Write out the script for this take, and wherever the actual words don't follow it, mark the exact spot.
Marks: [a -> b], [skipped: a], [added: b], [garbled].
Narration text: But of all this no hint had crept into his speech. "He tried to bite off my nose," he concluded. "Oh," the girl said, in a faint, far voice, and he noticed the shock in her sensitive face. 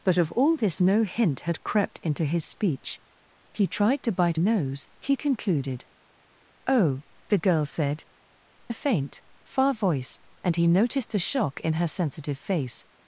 But of all this no hint had crept into his speech. "He tried to bite [skipped: off my] nose," he concluded. "Oh," the girl said, [skipped: in] a faint, far voice, and he noticed the shock in her sensitive face.